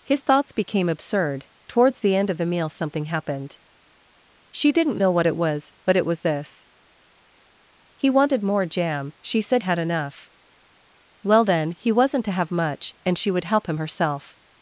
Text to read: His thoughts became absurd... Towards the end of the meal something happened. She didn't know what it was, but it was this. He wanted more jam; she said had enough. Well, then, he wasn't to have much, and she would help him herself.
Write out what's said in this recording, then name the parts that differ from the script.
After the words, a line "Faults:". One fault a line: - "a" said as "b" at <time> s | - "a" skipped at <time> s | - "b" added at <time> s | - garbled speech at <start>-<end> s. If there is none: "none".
His thoughts became absurd... Towards the end of the meal something happened. She didn't know what it was, but it was this. He wanted more jam; she said had enough. Well, then, he wasn't to have much, and she would help him herself.
Faults:
none